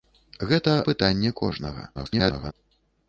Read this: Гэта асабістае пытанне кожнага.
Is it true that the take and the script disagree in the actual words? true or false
true